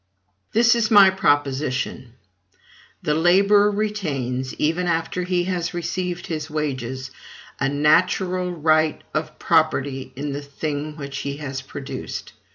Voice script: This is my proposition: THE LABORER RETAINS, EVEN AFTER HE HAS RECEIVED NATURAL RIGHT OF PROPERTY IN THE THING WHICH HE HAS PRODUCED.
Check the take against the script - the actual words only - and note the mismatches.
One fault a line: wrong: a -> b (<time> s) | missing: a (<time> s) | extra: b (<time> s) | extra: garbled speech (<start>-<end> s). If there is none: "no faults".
extra: HIS WAGES A (6.2 s)